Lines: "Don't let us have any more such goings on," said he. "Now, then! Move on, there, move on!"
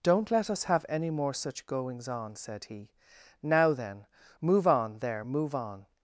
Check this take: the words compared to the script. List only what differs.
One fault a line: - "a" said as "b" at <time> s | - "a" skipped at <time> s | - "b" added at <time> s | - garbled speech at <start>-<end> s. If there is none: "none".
none